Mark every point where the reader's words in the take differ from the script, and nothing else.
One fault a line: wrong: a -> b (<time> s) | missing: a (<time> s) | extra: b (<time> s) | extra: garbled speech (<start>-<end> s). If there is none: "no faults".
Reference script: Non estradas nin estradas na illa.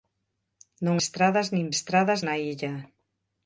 no faults